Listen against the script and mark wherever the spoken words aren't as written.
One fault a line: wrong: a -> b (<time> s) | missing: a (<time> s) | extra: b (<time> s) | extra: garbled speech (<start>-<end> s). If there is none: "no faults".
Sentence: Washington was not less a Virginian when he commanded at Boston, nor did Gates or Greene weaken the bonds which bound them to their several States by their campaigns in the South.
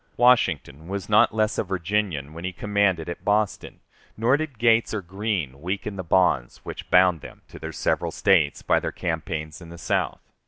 no faults